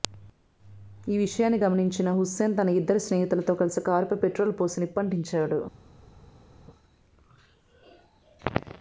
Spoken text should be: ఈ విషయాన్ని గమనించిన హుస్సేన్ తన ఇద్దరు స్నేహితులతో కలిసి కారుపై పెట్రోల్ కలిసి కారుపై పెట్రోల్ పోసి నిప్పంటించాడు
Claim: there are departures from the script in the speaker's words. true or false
true